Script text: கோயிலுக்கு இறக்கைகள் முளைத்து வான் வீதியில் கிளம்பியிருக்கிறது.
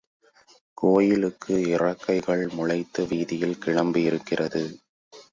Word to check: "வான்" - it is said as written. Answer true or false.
false